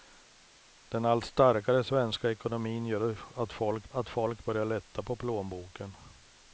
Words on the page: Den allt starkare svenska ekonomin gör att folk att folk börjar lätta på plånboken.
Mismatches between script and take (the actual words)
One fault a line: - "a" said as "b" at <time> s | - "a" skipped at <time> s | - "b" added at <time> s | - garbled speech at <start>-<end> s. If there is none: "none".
none